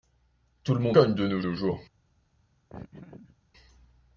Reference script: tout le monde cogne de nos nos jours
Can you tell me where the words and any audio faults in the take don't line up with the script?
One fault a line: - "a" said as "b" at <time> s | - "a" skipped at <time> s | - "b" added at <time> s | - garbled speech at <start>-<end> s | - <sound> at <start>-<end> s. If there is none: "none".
- laugh at 2.7-3.4 s